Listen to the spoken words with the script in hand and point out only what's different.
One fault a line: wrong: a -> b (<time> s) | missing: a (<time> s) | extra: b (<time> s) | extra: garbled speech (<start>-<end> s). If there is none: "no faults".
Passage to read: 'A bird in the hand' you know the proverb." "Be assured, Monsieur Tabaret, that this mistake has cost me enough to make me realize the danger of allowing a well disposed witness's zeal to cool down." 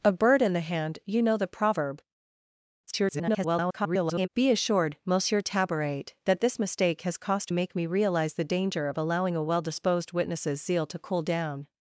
extra: garbled speech (2.9-4.3 s)
missing: me enough to (7.5 s)